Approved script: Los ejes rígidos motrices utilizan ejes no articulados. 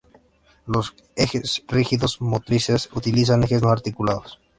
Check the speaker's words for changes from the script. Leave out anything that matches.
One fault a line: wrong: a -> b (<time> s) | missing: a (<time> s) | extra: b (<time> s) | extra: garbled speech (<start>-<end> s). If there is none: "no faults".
no faults